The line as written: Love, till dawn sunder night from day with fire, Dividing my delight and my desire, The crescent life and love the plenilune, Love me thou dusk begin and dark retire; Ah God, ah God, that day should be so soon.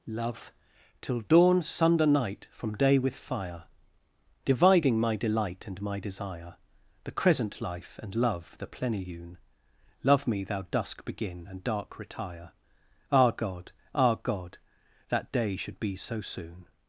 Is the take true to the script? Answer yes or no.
yes